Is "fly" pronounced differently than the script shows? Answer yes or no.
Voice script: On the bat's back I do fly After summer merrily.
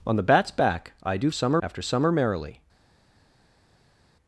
yes